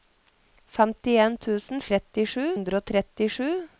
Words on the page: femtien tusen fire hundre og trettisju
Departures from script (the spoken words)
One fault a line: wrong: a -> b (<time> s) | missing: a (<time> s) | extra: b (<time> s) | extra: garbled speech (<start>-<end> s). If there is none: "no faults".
wrong: fire -> trettisju (1.9 s)